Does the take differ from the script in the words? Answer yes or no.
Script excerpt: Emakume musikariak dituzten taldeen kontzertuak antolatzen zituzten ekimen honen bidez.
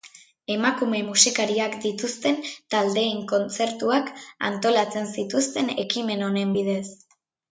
no